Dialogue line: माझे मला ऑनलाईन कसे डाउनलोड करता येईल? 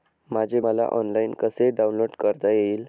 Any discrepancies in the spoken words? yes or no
no